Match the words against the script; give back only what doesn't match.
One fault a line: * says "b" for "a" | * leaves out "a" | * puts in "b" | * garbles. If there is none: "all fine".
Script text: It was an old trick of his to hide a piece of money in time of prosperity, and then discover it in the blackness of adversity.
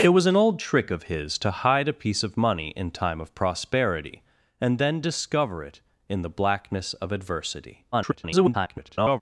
* garbles